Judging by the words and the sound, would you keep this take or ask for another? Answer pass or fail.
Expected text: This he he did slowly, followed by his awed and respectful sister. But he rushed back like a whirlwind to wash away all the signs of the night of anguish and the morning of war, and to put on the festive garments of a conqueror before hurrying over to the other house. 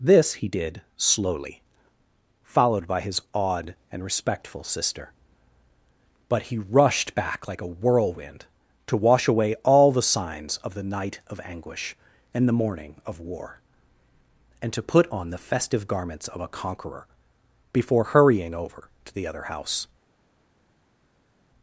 fail